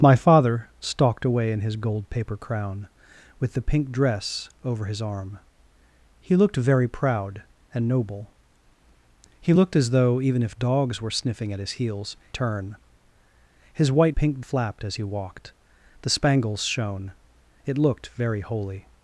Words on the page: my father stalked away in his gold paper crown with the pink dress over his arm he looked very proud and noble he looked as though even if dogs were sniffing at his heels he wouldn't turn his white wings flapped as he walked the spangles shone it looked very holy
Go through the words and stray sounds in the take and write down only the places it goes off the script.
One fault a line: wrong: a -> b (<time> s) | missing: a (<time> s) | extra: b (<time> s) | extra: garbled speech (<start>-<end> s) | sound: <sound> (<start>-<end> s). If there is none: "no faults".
missing: he wouldn't (12.2 s)
wrong: wings -> pink (14.1 s)